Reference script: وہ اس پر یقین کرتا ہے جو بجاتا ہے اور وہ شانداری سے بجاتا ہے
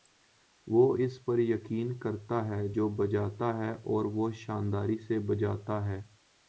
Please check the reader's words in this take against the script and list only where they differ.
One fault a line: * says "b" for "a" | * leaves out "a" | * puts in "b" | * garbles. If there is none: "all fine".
all fine